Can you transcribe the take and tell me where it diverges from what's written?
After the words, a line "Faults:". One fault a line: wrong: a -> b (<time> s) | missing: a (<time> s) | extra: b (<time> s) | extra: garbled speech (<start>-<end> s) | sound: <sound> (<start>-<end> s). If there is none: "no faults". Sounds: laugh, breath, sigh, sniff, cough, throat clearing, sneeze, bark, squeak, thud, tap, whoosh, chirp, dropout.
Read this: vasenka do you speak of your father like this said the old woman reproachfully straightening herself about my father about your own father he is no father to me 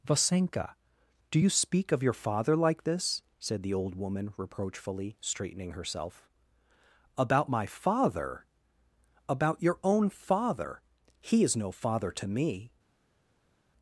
vasenka do you speak of your father like this said the old woman reproachfully straightening herself about my father about your own father he is no father to me
Faults:
no faults